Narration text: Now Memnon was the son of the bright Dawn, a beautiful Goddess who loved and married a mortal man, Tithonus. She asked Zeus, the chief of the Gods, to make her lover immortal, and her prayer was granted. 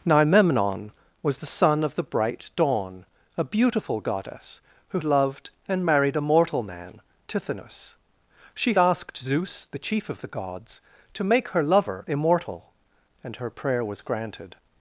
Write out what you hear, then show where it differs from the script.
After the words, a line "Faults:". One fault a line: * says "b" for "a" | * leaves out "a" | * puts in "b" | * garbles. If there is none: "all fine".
Now Memnon was the son of the bright Dawn, a beautiful Goddess who loved and married a mortal man, Tithonus. She asked Zeus, the chief of the Gods, to make her lover immortal, and her prayer was granted.
Faults:
all fine